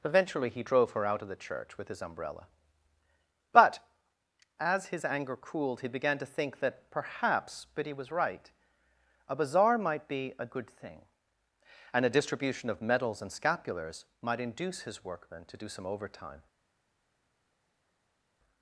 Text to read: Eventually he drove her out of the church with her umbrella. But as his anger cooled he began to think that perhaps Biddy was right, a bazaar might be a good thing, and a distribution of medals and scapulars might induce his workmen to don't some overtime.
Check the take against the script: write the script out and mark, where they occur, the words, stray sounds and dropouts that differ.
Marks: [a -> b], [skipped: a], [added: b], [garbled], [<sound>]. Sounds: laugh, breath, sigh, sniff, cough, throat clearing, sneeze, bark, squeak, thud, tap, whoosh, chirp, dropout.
Eventually he drove her out of the church with [her -> his] umbrella. But as his anger cooled he began to think that perhaps Biddy was right, a bazaar might be a good thing, and a distribution of medals and scapulars might induce his workmen to [don't -> do] some overtime.